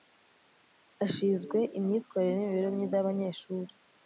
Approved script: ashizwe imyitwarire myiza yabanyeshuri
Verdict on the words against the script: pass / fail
fail